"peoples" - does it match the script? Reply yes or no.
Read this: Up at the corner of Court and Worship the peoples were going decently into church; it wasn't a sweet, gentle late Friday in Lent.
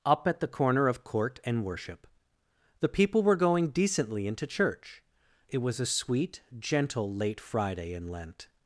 no